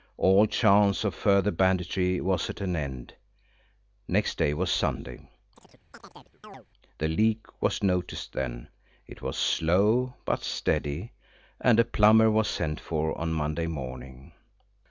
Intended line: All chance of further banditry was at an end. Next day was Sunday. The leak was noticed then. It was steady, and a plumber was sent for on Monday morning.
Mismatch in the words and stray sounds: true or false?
true